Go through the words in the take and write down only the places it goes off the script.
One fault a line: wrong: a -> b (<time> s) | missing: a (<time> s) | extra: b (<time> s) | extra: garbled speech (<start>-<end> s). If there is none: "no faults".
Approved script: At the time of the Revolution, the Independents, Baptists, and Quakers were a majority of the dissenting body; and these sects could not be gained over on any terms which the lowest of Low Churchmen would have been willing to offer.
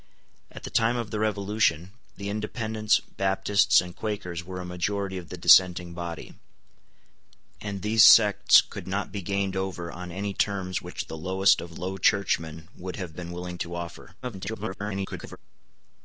extra: garbled speech (14.2-15.4 s)